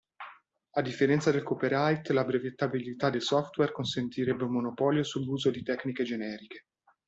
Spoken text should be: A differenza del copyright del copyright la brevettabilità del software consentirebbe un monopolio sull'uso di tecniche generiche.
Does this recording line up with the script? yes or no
no